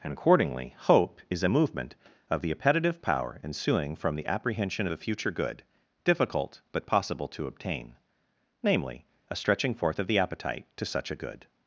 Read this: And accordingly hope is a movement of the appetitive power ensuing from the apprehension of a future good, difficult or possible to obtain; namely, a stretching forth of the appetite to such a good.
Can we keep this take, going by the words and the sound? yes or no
no